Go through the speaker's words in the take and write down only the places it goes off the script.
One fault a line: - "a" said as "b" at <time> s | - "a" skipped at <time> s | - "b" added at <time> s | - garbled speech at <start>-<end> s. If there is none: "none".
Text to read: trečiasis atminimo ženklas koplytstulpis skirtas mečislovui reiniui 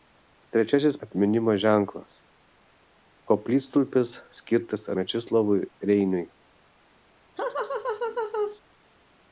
none